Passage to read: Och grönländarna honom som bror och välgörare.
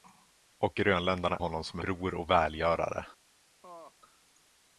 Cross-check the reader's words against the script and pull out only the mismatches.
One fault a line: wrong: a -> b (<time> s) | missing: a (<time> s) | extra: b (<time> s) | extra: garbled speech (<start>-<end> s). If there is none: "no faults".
no faults